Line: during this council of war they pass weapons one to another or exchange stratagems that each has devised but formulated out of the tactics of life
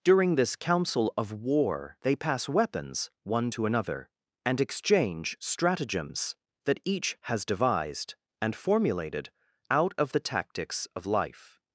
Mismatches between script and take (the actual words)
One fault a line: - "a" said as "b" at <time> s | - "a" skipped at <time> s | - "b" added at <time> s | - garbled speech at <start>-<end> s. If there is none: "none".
- "or" said as "and" at 4.5 s
- "but" said as "and" at 8.4 s